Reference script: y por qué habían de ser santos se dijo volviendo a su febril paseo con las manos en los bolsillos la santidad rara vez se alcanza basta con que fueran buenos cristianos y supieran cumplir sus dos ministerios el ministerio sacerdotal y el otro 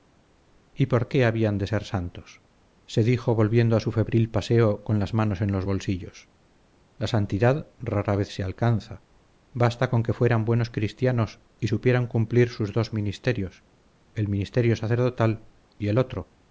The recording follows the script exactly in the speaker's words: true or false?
true